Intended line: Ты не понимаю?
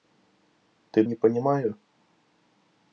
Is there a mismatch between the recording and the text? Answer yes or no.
no